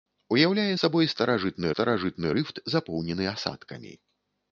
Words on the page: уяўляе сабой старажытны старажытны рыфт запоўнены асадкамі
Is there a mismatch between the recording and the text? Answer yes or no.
no